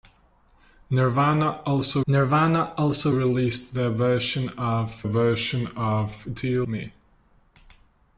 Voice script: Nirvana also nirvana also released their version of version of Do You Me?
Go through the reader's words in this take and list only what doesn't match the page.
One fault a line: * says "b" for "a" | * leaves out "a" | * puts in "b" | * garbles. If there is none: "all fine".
all fine